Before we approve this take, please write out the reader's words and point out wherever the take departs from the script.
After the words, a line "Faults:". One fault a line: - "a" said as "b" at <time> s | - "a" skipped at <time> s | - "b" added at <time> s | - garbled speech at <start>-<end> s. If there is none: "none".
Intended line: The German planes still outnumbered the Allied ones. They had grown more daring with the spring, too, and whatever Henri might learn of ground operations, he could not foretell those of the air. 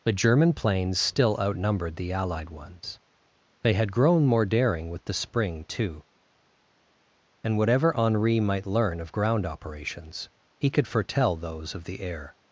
The German planes still outnumbered the Allied ones. They had grown more daring with the spring, too, and whatever Henri might learn of ground operations, he could foretell those of the air.
Faults:
- "not" skipped at 10.9 s